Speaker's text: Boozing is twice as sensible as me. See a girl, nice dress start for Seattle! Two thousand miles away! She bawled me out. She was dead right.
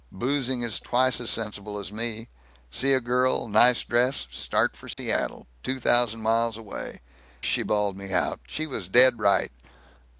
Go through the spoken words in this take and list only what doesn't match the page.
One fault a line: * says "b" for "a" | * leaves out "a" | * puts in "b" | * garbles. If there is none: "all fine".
all fine